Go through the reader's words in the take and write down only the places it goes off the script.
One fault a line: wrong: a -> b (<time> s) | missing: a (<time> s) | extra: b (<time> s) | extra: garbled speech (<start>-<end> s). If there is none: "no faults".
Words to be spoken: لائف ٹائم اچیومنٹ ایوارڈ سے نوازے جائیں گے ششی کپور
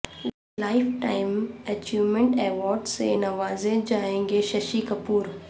no faults